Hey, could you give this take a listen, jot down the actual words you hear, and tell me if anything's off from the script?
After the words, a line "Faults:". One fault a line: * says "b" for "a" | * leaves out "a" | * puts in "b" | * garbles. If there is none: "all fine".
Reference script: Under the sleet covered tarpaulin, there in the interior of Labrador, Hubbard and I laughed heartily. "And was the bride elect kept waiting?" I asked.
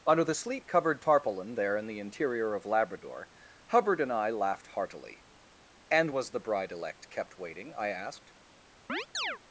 Under the sleet covered tarpaulin, there in the interior of Labrador, Hubbard and I laughed heartily. "And was the bride elect kept waiting?" I asked.
Faults:
all fine